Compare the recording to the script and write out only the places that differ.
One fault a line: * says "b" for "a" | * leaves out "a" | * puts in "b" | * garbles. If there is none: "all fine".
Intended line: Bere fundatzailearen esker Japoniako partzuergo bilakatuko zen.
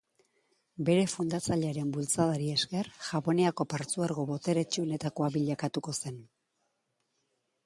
* puts in "bultzadari"
* puts in "boteretsuenetakoa"